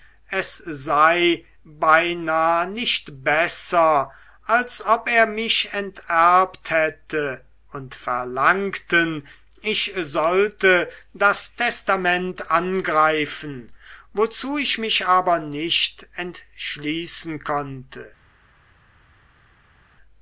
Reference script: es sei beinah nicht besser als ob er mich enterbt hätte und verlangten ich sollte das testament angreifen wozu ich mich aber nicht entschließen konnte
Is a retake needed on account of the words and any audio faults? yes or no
no